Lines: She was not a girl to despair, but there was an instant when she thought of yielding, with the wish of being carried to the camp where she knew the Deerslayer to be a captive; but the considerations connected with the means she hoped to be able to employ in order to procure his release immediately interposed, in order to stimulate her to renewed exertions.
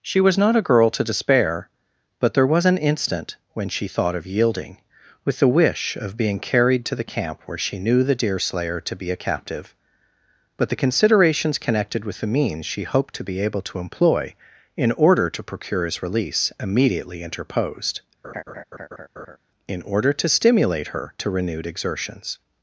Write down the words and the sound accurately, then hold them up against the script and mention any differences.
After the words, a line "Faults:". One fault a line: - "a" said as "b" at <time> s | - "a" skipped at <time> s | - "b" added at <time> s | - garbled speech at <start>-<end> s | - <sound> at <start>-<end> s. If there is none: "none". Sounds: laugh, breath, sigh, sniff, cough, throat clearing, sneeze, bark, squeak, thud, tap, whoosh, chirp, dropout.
She was not a girl to despair, but there was an instant when she thought of yielding, with the wish of being carried to the camp where she knew the Deerslayer to be a captive; but the considerations connected with the means she hoped to be able to employ in order to procure his release immediately interposed, in order to stimulate her to renewed exertions.
Faults:
- laugh at 18.2-19.4 s